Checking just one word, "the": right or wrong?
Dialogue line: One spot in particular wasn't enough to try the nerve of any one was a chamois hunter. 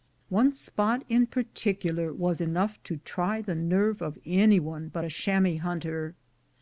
right